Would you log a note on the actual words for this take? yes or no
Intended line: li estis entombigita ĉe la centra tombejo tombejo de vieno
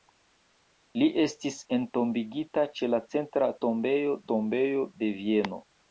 no